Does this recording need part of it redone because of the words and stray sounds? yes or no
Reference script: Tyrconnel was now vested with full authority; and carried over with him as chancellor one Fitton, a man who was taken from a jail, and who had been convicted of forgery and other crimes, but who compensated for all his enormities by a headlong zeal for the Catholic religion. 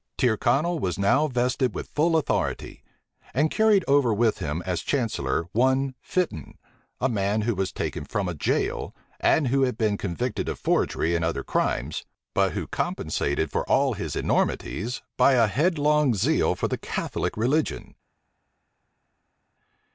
no